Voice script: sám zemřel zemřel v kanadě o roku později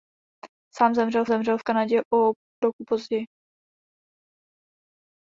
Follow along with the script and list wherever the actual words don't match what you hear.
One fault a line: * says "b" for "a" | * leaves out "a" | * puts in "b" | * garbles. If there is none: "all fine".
all fine